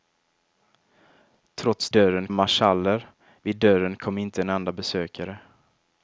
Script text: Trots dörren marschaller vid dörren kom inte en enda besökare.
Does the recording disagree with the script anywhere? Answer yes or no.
no